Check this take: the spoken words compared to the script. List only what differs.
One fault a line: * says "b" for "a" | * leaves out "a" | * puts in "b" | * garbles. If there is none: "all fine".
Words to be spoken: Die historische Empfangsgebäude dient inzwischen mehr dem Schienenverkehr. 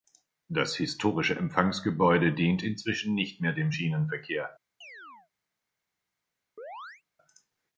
* says "Das" for "Die"
* puts in "nicht"